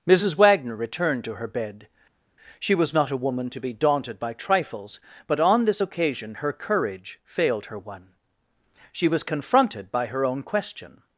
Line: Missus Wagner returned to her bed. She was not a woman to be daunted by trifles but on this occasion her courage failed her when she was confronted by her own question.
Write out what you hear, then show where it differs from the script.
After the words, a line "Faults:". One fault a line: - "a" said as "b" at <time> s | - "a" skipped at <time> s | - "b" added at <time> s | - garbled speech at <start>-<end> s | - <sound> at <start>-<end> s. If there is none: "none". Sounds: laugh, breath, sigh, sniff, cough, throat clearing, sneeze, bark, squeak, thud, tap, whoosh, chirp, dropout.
Missus Wagner returned to her bed. She was not a woman to be daunted by trifles but on this occasion her courage failed her one she was confronted by her own question.
Faults:
- "when" said as "one" at 7.8 s